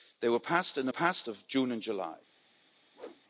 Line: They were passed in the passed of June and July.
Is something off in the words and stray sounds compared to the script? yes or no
yes